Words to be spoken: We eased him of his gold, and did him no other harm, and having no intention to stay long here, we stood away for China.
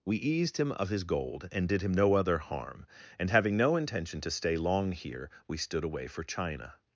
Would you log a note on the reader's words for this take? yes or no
no